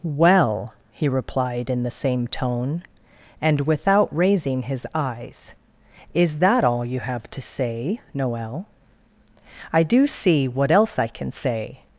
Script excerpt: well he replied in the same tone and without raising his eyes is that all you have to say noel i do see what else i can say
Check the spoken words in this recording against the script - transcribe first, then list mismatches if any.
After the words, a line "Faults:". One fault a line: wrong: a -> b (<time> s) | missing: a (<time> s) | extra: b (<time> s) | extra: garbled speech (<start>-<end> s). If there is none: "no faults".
well he replied in the same tone and without raising his eyes is that all you have to say noel i do see what else i can say
Faults:
no faults